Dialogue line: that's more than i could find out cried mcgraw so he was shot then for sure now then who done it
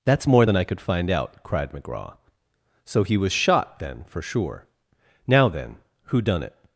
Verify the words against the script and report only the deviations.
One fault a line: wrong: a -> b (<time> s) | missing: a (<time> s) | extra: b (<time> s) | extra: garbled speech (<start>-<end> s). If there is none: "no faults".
no faults